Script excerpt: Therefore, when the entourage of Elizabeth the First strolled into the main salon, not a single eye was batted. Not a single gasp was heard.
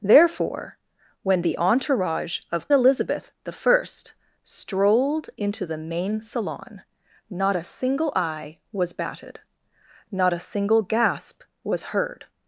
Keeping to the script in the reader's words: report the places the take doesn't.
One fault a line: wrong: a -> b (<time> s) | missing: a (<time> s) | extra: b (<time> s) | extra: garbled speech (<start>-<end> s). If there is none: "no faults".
no faults